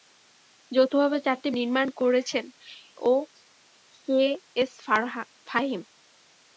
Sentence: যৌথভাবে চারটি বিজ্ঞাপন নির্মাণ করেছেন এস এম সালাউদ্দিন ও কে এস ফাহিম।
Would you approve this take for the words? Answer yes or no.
no